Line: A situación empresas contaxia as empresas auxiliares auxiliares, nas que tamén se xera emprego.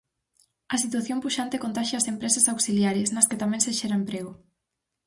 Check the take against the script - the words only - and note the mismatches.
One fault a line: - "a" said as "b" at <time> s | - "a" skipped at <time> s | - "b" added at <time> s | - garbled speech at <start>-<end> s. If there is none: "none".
- "empresas" said as "puxante" at 1.2 s
- "auxiliares" skipped at 3.1 s